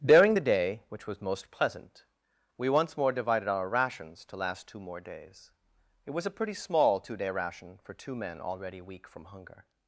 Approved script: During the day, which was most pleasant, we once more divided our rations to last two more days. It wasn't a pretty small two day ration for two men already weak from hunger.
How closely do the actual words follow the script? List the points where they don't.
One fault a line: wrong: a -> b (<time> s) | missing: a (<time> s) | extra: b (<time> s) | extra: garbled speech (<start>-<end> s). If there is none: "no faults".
wrong: wasn't -> was (6.1 s)